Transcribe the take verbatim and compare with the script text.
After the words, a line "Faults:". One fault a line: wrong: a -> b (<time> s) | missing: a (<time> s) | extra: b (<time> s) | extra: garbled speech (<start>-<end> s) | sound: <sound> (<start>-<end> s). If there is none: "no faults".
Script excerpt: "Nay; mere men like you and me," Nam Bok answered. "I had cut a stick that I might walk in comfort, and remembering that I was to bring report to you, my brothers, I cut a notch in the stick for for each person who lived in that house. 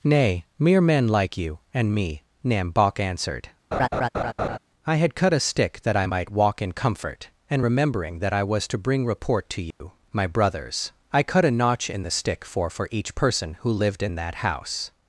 "Nay; mere men like you and me," Nam Bok answered. "I had cut a stick that I might walk in comfort, and remembering that I was to bring report to you, my brothers, I cut a notch in the stick for for each person who lived in that house.
Faults:
sound: laugh (3.7-4.6 s)
sound: dropout (9.7-9.8 s)